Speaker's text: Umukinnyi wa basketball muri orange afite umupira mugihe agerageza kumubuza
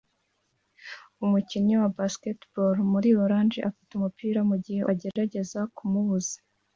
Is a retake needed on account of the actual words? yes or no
no